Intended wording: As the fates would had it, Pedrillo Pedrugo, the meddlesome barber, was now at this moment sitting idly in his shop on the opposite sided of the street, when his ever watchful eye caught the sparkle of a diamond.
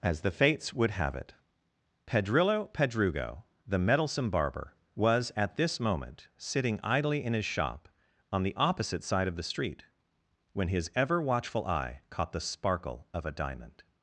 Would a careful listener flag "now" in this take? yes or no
yes